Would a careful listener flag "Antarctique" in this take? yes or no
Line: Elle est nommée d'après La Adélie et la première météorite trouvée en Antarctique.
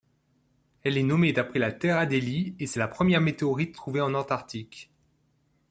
no